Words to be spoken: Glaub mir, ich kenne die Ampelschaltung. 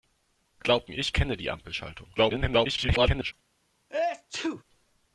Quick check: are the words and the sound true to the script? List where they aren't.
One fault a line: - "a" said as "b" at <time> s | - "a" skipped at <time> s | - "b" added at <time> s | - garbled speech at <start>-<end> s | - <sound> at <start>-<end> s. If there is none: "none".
- garbled speech at 2.2-3.3 s
- sneeze at 3.9-4.6 s